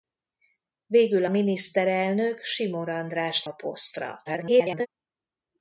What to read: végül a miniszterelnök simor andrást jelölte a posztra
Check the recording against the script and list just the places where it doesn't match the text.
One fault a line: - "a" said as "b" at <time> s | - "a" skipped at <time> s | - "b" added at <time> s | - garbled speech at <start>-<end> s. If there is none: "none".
- "a" skipped at 1.2 s
- "jelölte" skipped at 3.5 s
- garbled speech at 4.3-4.9 s